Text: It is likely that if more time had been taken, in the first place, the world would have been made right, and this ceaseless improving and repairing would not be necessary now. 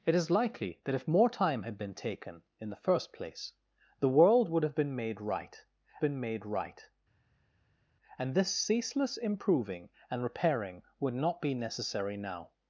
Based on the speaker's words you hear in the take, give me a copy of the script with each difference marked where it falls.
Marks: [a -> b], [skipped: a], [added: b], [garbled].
It is likely that if more time had been taken, in the first place, the world would have been made right, [added: been made right] and this ceaseless improving and repairing would not be necessary now.